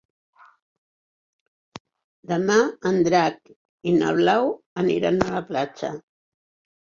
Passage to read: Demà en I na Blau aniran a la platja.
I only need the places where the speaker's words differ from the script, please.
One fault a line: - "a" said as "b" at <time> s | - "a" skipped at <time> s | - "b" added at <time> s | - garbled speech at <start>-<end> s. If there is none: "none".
- "Drac" added at 3.1 s